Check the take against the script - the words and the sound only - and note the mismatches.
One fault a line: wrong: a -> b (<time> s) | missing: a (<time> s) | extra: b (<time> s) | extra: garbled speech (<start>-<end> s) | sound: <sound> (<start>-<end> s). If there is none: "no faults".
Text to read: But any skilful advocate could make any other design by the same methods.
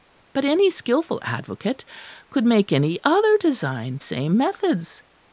missing: by the (4.0 s)